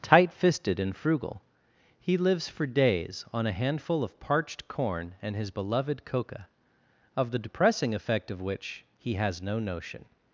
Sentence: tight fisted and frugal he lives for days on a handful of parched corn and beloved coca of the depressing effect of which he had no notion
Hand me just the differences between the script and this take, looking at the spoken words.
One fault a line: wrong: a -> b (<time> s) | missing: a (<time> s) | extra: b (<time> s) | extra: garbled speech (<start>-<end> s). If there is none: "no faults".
extra: his (5.3 s)
wrong: had -> has (9.2 s)